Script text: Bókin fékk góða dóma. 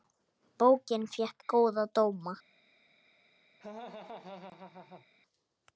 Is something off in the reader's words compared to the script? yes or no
no